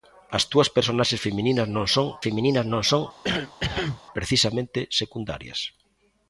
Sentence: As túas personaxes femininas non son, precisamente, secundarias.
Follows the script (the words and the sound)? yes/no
no